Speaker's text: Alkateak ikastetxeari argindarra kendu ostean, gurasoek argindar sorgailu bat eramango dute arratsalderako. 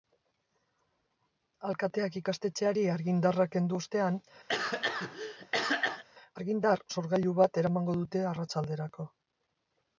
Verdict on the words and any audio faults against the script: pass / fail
fail